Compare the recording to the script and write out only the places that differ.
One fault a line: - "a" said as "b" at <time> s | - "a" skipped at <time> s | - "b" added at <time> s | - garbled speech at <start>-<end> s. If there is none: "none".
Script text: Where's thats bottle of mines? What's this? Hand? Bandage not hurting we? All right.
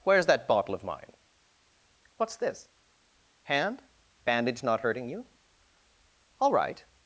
- "thats" said as "that" at 0.2 s
- "mines" said as "mine" at 0.8 s
- "we" said as "you" at 5.1 s